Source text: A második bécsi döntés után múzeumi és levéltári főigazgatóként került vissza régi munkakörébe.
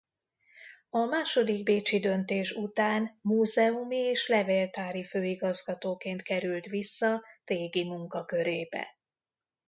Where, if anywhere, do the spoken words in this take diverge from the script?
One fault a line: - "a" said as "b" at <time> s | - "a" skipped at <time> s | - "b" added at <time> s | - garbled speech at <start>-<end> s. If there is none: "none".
none